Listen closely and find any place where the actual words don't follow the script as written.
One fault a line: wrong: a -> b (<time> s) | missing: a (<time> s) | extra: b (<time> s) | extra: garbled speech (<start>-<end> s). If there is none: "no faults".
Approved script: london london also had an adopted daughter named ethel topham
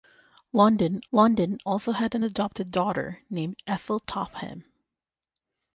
no faults